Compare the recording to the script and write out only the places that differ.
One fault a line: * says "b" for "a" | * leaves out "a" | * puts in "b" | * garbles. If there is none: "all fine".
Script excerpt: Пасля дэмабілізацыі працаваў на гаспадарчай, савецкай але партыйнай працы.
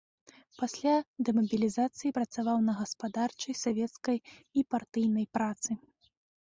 * says "і" for "але"